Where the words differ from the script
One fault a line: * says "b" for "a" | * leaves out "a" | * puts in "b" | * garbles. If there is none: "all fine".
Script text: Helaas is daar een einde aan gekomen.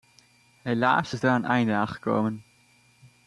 all fine